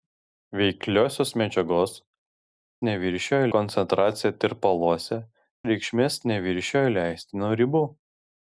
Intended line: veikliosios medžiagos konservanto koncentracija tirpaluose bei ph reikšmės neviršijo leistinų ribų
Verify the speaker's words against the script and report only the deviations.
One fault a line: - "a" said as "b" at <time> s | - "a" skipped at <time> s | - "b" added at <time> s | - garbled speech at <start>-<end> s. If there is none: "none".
- "konservanto" said as "neviršijo" at 2.9 s
- "bei ph" skipped at 5.2 s